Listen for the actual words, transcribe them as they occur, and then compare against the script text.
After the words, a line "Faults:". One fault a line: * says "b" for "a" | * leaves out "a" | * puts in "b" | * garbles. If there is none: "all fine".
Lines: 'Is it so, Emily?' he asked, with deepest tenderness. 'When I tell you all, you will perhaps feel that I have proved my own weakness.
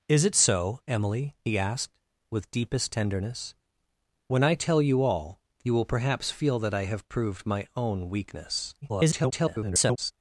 'Is it so, Emily?' he asked, with deepest tenderness. 'When I tell you all, you will perhaps feel that I have proved my own weakness. [garbled]
Faults:
* garbles